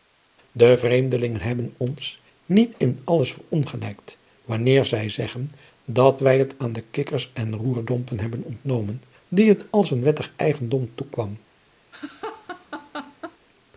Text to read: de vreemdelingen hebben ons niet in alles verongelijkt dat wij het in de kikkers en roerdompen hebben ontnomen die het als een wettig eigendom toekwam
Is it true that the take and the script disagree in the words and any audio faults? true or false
true